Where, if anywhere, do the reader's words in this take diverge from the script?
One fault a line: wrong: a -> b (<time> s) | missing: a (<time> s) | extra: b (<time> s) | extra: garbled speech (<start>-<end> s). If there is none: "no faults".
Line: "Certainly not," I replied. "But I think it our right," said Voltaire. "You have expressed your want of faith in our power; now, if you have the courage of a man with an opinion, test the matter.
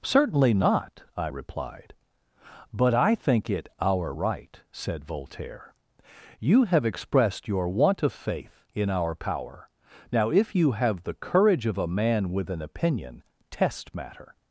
missing: the (13.9 s)